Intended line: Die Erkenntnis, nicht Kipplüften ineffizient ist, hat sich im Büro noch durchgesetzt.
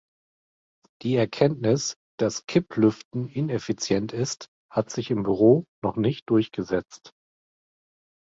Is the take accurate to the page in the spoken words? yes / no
no